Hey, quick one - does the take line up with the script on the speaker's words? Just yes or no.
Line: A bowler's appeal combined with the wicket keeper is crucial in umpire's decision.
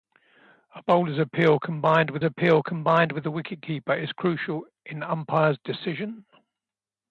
no